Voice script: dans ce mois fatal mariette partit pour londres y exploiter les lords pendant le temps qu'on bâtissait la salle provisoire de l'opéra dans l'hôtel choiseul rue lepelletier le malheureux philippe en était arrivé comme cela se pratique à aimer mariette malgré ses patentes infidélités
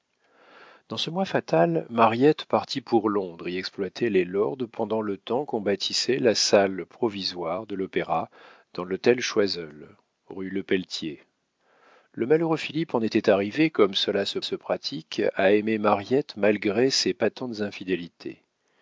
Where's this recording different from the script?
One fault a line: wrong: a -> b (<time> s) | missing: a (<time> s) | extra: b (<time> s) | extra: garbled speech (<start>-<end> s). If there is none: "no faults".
extra: se (14.4 s)